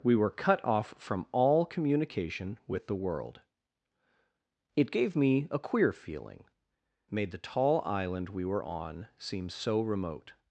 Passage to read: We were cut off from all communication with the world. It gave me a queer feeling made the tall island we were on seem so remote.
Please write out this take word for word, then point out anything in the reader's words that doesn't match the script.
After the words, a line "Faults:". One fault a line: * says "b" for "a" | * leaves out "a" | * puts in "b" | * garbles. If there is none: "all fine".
We were cut off from all communication with the world. It gave me a queer feeling made the tall island we were on seem so remote.
Faults:
all fine